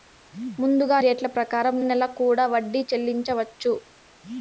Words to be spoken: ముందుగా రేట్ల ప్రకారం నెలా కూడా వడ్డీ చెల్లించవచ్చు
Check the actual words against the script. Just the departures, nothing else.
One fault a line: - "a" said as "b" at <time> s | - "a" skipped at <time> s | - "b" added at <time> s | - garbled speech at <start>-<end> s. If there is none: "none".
none